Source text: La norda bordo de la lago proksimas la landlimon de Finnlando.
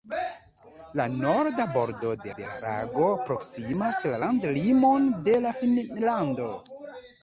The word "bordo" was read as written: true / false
true